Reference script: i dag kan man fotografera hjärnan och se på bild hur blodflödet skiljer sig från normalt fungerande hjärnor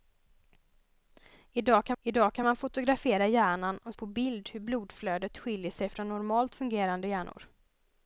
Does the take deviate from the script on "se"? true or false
true